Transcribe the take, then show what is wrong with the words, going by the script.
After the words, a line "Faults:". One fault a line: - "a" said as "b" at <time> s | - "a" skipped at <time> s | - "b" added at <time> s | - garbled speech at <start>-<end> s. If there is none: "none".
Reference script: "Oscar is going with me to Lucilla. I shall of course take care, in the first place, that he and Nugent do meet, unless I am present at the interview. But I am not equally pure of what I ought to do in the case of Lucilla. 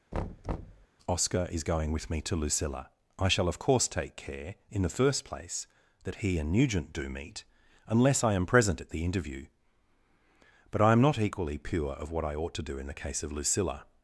"Oscar is going with me to Lucilla. I shall of course take care, in the first place, that he and Nugent do meet, unless I am present at the interview. But I am not equally pure of what I ought to do in the case of Lucilla.
Faults:
none